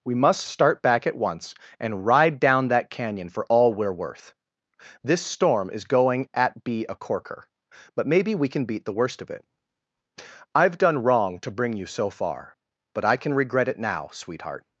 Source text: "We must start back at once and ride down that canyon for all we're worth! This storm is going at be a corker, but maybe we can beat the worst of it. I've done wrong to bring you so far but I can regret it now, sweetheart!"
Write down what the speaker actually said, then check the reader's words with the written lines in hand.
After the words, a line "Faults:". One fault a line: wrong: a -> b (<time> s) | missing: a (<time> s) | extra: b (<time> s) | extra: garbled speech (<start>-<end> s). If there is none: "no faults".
"We must start back at once and ride down that canyon for all we're worth! This storm is going at be a corker, but maybe we can beat the worst of it. I've done wrong to bring you so far but I can regret it now, sweetheart!"
Faults:
no faults